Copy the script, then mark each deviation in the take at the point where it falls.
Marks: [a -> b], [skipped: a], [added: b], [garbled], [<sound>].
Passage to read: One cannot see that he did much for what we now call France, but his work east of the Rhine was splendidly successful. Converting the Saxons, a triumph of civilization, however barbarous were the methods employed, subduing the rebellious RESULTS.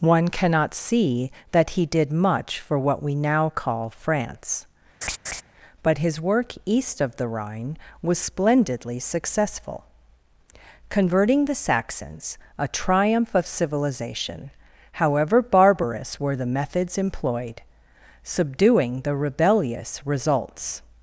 One cannot see that he did much for what we now call France, [laugh] but his work east of the Rhine was splendidly successful. Converting the Saxons, a triumph of civilization, however barbarous were the methods employed, subduing the rebellious RESULTS.